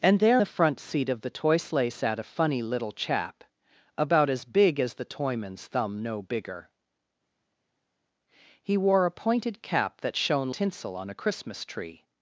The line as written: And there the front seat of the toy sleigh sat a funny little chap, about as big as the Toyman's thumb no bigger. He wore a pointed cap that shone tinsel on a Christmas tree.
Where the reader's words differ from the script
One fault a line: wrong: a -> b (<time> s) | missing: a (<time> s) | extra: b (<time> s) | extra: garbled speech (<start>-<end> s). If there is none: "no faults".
no faults